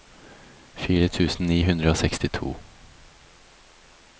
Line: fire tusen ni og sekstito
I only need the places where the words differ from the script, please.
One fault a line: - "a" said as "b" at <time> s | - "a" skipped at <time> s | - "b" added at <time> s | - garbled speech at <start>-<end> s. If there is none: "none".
- "hundre" added at 1.6 s